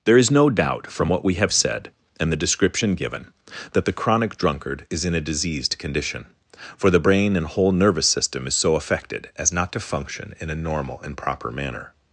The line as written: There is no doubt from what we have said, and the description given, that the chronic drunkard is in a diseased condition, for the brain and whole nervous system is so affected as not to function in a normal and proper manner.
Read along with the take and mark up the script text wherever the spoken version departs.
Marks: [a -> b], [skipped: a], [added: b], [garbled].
There is no doubt from what we have said, and the description given, that the chronic drunkard is in a diseased condition, for the brain and whole nervous system is so affected as not to function in a normal and proper manner.